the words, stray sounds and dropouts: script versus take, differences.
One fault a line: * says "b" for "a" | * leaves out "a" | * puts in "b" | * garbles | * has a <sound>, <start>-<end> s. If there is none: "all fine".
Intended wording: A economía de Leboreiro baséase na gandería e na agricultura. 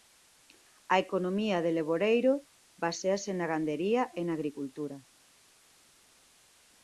all fine